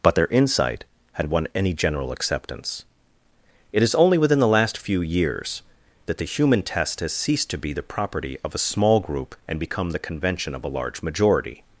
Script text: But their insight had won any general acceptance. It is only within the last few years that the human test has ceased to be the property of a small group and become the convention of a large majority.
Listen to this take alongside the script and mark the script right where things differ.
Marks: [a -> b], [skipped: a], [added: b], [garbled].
But their insight had won any general acceptance. It is only within the last few years that the human test has ceased to be the property of a small group and become the convention of a large majority.